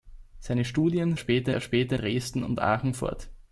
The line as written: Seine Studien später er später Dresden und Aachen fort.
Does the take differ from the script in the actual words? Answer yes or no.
no